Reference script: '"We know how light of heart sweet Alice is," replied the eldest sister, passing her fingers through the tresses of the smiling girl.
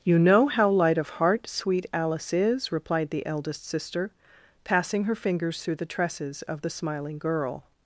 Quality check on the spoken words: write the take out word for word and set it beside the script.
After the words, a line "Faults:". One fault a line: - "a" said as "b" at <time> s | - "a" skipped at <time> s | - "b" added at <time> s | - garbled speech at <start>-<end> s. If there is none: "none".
'"You know how light of heart sweet Alice is," replied the eldest sister, passing her fingers through the tresses of the smiling girl.
Faults:
- "We" said as "You" at 0.0 s